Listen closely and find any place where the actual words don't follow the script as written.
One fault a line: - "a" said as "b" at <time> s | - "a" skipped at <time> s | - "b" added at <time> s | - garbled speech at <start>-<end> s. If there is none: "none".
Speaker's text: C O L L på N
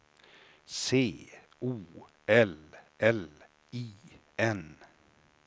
- "på" said as "I" at 3.7 s